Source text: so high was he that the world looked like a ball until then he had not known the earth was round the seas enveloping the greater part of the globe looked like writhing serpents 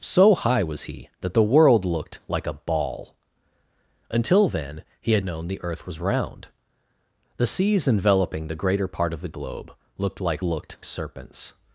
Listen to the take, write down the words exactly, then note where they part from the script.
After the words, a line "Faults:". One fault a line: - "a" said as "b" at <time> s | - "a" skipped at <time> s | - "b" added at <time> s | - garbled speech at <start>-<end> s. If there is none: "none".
so high was he that the world looked like a ball until then he had known the earth was round the seas enveloping the greater part of the globe looked like looked serpents
Faults:
- "not" skipped at 5.2 s
- "writhing" said as "looked" at 10.4 s